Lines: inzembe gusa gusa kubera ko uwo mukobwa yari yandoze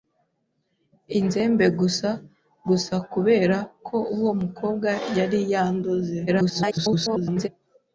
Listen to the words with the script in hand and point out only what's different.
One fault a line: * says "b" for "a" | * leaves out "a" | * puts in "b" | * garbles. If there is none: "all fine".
* garbles